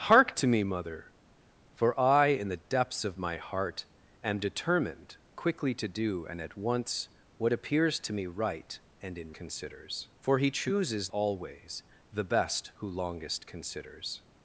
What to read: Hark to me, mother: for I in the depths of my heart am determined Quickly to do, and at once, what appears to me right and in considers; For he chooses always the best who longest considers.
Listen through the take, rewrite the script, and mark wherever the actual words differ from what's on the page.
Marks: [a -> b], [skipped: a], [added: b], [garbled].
Hark to me, mother: for I in the depths of my heart am determined Quickly to do, and at once, what appears to me right and in considers; For he chooses always the best who longest considers.